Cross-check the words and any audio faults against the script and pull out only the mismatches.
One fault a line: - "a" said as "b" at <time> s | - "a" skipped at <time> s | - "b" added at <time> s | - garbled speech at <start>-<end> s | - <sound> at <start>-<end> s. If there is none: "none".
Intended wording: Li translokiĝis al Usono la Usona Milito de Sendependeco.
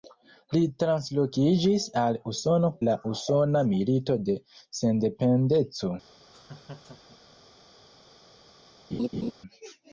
- laugh at 6.3-7.4 s
- laugh at 8.9-9.3 s